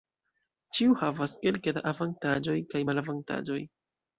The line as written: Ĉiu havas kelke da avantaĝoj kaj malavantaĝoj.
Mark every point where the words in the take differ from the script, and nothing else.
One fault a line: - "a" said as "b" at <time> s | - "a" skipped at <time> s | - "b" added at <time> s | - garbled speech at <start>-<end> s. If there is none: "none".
none